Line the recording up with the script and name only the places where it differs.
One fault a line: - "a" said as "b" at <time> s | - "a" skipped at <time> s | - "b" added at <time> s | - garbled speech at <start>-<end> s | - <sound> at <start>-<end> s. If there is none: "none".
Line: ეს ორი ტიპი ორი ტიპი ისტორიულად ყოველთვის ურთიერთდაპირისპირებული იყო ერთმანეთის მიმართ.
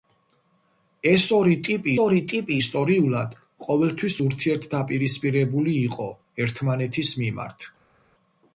none